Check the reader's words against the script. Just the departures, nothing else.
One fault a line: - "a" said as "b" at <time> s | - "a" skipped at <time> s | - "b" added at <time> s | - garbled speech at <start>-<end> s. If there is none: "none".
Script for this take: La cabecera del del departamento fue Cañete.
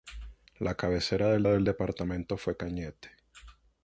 none